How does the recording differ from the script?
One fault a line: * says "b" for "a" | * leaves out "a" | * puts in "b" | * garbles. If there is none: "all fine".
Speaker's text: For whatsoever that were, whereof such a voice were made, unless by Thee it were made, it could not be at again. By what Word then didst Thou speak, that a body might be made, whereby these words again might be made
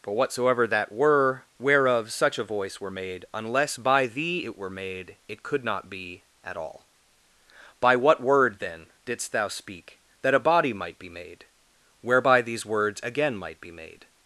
* says "all" for "again"